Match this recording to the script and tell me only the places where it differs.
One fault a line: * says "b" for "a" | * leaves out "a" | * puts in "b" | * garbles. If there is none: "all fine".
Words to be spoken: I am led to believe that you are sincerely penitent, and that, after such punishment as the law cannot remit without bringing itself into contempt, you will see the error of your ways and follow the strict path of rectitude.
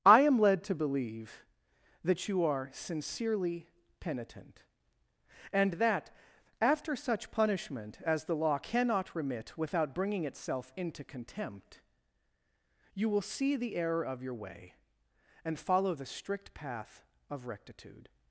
* says "way" for "ways"